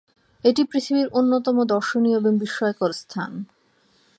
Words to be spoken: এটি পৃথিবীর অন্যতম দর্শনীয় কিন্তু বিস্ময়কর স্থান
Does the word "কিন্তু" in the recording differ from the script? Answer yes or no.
yes